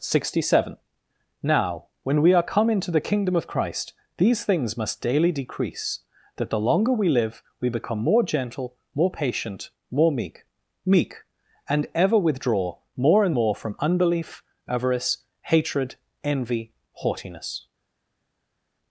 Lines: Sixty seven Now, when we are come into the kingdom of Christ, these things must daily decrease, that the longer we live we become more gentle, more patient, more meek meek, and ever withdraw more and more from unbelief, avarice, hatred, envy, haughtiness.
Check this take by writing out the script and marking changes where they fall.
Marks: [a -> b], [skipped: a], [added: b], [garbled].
Sixty seven Now, when we are come into the kingdom of Christ, these things must daily decrease, that the longer we live we become more gentle, more patient, more meek meek, and ever withdraw more and more from unbelief, avarice, hatred, envy, haughtiness.